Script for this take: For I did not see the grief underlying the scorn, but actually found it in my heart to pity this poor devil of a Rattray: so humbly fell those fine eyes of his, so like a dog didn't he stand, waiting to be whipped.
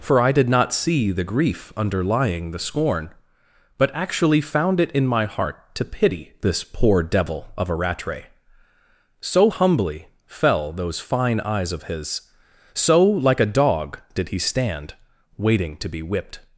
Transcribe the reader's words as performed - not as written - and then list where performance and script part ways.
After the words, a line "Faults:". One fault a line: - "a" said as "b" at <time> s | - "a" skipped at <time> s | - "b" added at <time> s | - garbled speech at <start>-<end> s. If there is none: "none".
For I did not see the grief underlying the scorn, but actually found it in my heart to pity this poor devil of a Rattray: so humbly fell those fine eyes of his, so like a dog did he stand, waiting to be whipped.
Faults:
- "didn't" said as "did" at 14.1 s